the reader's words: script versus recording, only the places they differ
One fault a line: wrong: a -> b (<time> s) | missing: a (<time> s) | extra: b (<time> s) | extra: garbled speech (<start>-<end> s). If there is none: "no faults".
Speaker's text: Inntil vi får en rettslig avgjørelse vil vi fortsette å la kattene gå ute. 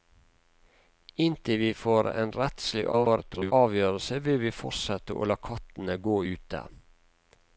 extra: garbled speech (2.9-3.5 s)